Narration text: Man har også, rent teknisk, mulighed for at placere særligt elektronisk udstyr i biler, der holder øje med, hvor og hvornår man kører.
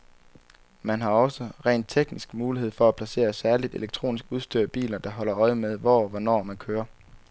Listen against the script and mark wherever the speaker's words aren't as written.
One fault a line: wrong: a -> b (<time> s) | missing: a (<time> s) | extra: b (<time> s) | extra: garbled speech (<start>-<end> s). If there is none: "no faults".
no faults